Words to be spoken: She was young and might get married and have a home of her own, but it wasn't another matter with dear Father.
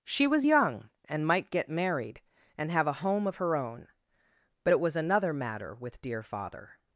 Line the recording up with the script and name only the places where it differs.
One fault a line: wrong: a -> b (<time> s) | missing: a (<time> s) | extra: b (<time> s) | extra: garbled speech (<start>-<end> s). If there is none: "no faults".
wrong: wasn't -> was (4.8 s)